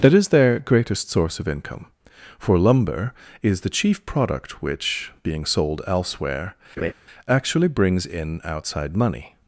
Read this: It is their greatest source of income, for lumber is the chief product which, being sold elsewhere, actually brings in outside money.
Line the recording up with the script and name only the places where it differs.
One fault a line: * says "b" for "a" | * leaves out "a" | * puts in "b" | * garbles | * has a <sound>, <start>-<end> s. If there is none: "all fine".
* says "That" for "It"
* has a laugh, 6.8-6.9 s